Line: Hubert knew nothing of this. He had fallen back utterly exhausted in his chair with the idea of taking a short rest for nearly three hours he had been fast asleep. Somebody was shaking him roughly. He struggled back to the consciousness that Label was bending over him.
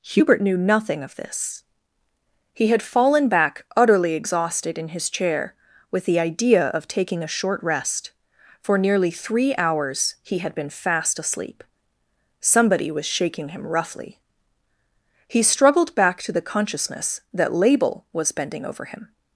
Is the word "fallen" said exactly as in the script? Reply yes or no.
yes